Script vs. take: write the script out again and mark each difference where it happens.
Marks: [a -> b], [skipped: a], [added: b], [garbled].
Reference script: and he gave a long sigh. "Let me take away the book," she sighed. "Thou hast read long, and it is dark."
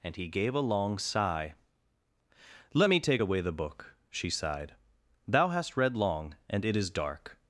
and he gave a long sigh. "Let me take away the book," she sighed. "Thou hast read long, and it is dark."